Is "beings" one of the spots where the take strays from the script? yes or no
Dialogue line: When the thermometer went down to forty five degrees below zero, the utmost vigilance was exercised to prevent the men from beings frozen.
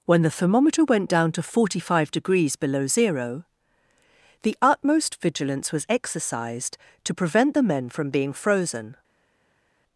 yes